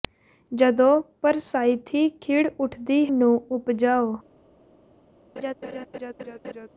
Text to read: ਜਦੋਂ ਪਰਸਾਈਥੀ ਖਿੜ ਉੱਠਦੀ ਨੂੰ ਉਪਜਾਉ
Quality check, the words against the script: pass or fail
pass